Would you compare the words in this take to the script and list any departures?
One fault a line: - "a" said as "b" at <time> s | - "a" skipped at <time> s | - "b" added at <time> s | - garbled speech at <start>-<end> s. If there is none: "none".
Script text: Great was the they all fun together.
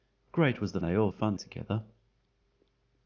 none